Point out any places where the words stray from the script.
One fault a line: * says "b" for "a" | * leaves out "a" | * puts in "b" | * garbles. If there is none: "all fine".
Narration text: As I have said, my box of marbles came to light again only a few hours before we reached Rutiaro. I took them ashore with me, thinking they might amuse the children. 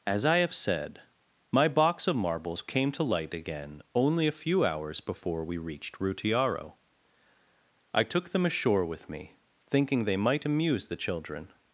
all fine